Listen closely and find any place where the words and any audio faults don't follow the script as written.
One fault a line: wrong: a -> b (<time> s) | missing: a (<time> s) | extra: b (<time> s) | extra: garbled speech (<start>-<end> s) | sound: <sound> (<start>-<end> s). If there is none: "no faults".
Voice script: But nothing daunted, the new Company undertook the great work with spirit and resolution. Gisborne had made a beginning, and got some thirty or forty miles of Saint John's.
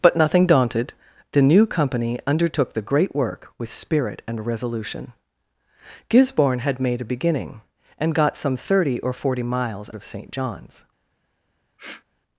sound: sniff (11.8-12.0 s)